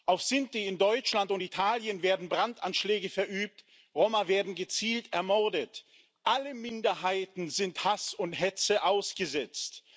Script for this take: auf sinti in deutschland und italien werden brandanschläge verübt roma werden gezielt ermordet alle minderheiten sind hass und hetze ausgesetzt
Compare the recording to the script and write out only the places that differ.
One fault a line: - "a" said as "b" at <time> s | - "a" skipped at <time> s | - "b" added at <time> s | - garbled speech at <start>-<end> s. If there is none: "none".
none